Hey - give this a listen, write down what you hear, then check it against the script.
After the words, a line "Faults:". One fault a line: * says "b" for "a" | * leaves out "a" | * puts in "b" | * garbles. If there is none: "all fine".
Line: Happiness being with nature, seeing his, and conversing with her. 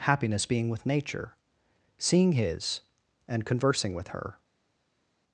Happiness being with nature, seeing his, and conversing with her.
Faults:
all fine